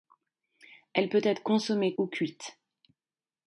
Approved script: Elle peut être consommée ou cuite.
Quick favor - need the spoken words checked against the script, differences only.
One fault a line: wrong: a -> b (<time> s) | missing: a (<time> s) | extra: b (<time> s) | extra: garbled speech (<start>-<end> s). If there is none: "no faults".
no faults